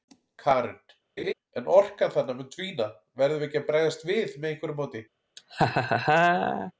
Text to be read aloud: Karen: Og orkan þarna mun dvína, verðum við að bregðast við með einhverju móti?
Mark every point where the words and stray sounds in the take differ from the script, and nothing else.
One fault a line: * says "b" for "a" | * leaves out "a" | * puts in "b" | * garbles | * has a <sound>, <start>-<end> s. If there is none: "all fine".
* has a laugh, 1.2-1.3 s
* says "En" for "Og"
* puts in "ekki"
* has a laugh, 5.4-6.7 s